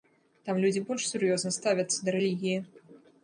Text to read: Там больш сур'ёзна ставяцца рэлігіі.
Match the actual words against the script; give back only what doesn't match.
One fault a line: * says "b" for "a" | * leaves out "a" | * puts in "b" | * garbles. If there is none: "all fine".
* puts in "людзі"
* puts in "да"